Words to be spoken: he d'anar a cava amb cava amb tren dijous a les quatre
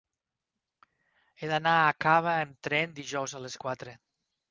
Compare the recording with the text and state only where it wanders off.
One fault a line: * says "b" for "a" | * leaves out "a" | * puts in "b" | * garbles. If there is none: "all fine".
* leaves out "cava amb"